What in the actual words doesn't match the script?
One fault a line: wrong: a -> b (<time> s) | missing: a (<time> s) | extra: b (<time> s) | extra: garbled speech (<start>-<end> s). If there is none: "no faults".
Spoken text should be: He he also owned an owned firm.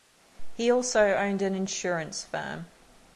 missing: he (0.7 s)
wrong: owned -> insurance (1.5 s)